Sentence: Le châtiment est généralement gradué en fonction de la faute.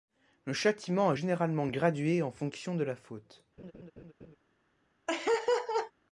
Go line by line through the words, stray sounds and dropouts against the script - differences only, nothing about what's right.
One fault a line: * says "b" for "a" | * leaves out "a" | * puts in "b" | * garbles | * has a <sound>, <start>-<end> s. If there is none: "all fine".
* has a laugh, 3.6-4.4 s
* has a laugh, 5.1-5.9 s